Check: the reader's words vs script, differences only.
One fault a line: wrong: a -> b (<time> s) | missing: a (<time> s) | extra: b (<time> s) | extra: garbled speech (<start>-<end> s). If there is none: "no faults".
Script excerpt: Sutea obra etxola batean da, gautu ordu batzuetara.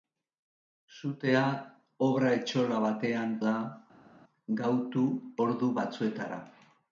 no faults